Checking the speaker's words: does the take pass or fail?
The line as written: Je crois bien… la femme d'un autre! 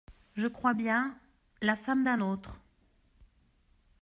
pass